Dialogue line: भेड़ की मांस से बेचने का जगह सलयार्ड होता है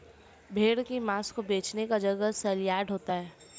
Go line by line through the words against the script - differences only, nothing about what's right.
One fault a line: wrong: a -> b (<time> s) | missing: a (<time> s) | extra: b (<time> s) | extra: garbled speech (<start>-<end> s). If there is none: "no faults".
wrong: से -> को (1.3 s)